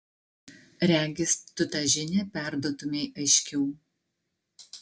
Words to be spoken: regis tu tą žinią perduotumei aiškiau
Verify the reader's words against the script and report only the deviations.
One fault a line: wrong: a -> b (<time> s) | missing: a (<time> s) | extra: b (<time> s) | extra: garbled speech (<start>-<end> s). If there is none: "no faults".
no faults